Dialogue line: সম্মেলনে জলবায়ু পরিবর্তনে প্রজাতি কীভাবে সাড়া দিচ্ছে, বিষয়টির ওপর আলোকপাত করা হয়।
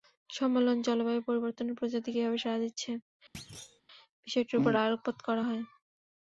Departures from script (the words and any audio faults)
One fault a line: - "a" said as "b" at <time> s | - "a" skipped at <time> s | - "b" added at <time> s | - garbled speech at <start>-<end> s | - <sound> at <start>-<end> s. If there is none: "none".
- thud at 3.3-3.8 s